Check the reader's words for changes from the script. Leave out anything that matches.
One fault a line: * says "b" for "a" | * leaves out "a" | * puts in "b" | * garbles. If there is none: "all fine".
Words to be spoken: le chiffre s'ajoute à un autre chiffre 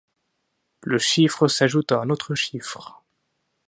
all fine